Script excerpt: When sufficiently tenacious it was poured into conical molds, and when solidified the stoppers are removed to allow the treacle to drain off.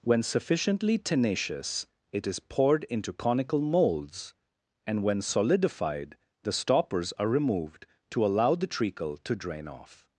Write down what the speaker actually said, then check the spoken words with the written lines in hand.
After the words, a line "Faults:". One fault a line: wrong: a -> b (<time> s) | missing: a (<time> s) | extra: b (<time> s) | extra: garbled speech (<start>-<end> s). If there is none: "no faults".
When sufficiently tenacious it is poured into conical molds, and when solidified the stoppers are removed to allow the treacle to drain off.
Faults:
wrong: was -> is (2.2 s)